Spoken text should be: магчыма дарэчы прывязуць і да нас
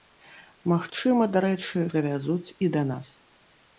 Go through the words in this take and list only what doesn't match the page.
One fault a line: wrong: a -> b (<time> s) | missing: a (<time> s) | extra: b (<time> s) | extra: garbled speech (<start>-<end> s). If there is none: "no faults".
no faults